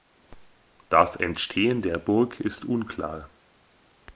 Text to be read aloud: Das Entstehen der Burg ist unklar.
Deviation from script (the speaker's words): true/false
false